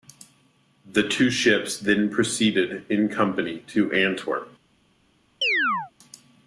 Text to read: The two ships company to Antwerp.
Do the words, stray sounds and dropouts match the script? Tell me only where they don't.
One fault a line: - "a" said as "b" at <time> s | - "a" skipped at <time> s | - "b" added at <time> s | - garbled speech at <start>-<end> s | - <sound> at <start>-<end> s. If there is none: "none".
- "then proceeded in" added at 1.8 s
- chirp at 5.4-5.9 s